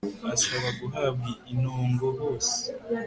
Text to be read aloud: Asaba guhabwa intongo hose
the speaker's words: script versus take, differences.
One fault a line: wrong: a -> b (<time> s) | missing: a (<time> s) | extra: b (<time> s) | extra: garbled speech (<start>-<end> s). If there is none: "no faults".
no faults